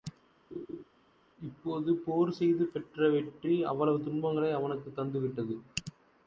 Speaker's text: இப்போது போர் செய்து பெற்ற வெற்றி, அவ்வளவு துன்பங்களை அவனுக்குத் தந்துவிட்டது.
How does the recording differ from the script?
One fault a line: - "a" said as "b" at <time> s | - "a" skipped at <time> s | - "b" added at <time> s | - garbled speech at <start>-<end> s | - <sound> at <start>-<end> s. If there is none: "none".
- laugh at 0.5-0.8 s